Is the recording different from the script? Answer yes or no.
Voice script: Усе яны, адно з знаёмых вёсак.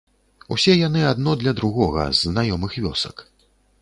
yes